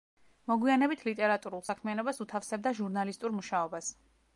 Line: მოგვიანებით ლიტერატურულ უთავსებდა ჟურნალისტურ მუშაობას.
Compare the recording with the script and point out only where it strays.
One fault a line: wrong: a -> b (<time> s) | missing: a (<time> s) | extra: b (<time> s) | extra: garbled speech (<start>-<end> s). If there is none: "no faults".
extra: საქმიანობას (1.7 s)